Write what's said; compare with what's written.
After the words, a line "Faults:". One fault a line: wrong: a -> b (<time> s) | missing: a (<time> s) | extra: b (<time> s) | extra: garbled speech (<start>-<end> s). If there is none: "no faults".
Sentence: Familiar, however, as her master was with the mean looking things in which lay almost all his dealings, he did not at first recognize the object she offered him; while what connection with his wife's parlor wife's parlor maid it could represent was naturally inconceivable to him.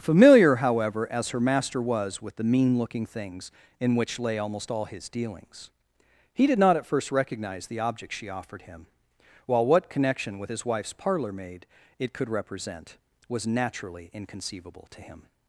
Familiar, however, as her master was with the mean looking things in which lay almost all his dealings, he did not at first recognize the object she offered him; while what connection with his wife's parlor maid it could represent was naturally inconceivable to him.
Faults:
missing: wife's parlor (11.3 s)